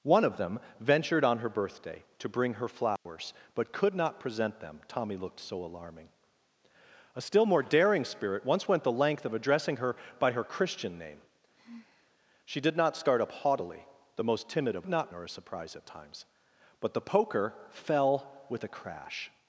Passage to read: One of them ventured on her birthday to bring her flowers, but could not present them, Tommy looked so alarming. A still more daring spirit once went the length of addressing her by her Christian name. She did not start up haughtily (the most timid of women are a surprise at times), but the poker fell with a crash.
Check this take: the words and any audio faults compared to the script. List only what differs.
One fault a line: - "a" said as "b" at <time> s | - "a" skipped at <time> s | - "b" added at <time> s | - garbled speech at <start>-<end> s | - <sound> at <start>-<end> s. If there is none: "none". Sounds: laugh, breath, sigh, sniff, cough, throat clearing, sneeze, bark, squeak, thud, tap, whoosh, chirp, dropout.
- dropout at 3.0-3.1 s
- sigh at 11.5-12.1 s
- "women" said as "not" at 14.9 s